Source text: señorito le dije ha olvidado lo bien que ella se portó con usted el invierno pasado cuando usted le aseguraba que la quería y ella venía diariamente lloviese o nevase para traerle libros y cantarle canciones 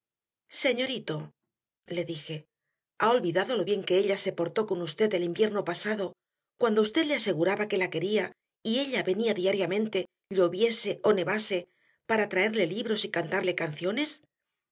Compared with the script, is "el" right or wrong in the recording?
right